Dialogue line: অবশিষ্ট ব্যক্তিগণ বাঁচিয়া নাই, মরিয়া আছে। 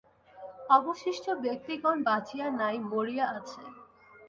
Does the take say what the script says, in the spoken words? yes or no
yes